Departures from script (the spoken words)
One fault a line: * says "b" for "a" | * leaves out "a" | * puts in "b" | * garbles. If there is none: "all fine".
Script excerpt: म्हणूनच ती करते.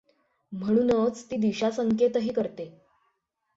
* puts in "दिशासंकेतही"